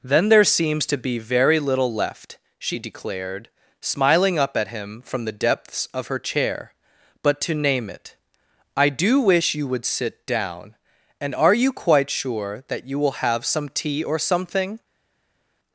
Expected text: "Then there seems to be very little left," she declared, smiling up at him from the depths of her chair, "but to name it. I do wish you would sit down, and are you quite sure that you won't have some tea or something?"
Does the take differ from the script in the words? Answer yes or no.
yes